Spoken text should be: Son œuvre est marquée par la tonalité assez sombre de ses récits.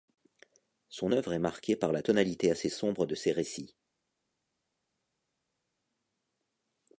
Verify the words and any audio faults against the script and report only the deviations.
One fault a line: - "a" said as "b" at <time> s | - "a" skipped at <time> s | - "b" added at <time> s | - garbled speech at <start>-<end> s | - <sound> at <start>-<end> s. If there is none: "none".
none